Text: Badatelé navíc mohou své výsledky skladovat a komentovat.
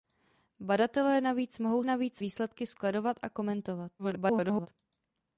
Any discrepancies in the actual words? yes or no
yes